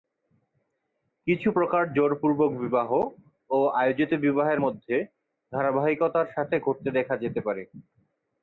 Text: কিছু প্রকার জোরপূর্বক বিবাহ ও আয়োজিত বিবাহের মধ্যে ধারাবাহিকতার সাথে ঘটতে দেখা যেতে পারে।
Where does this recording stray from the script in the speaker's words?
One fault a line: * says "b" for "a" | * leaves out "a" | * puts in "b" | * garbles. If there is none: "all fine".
all fine